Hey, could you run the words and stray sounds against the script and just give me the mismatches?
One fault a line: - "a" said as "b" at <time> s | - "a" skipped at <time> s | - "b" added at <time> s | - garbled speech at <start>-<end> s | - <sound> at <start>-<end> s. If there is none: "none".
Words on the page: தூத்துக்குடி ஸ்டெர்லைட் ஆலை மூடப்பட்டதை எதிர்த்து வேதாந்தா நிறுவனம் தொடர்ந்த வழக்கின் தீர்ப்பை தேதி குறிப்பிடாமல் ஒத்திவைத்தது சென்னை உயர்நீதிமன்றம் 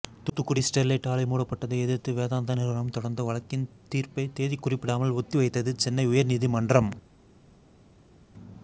none